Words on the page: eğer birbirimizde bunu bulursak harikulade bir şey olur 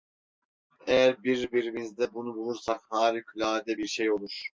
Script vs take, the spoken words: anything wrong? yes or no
no